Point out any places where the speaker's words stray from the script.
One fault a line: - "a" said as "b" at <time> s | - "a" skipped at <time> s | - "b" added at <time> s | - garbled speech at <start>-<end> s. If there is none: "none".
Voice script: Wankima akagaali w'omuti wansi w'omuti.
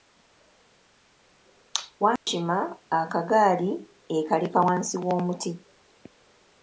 - "w'omuti" said as "ekaleka" at 4.2 s